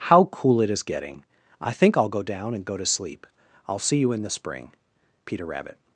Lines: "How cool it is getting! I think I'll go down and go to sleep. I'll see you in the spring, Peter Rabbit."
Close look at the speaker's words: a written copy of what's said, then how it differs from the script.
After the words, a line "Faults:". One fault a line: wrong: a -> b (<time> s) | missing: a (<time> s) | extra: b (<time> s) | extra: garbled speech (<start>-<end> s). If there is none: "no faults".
"How cool it is getting! I think I'll go down and go to sleep. I'll see you in the spring, Peter Rabbit."
Faults:
no faults